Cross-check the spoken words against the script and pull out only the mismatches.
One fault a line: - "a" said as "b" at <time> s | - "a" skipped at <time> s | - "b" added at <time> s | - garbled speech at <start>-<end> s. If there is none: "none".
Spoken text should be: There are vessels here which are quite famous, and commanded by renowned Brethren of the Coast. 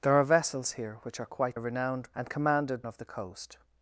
- "famous" said as "renowned" at 1.5 s
- "by renowned Brethren" skipped at 2.8 s